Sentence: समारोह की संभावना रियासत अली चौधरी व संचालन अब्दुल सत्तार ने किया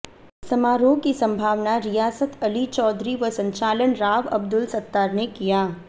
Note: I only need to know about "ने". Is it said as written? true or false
true